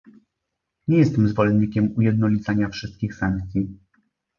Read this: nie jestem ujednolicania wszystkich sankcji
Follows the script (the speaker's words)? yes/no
no